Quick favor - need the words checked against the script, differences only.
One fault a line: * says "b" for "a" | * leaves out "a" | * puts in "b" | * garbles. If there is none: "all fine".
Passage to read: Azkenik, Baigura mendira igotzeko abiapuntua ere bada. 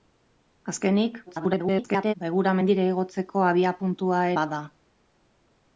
* garbles
* leaves out "ere"